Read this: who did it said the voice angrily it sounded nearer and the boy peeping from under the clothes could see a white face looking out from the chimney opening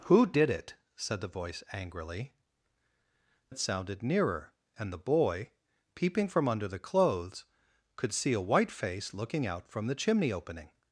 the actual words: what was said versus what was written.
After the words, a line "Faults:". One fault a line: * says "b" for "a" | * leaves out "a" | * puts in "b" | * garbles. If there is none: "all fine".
who did it said the voice angrily it sounded nearer and the boy peeping from under the clothes could see a white face looking out from the chimney opening
Faults:
all fine